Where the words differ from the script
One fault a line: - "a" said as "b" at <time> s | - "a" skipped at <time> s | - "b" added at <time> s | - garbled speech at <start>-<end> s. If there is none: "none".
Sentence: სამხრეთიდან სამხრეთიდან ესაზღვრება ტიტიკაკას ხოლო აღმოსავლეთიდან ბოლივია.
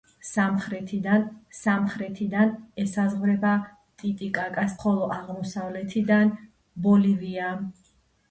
none